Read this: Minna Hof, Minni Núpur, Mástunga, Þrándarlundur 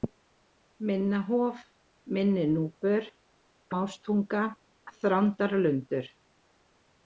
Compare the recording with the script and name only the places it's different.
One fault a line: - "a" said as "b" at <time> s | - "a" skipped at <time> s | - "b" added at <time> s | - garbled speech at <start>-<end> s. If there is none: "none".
none